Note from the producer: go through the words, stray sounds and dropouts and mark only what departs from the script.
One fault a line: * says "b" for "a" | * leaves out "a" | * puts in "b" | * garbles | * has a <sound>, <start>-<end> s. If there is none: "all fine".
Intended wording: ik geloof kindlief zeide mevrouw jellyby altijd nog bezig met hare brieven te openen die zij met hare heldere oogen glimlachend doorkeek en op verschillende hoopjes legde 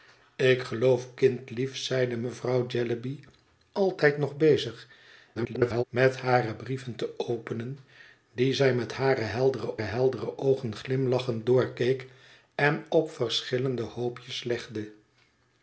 * garbles
* puts in "heldere"